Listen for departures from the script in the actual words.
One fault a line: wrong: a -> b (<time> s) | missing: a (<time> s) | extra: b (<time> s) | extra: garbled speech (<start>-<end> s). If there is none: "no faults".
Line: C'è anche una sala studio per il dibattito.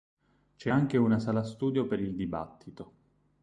no faults